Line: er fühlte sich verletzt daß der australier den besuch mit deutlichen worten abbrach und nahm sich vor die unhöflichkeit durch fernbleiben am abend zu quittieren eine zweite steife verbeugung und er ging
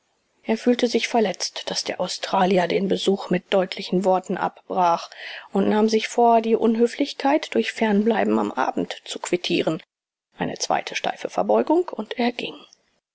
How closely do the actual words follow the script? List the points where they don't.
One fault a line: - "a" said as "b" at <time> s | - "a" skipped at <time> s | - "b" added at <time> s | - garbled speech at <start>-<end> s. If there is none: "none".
none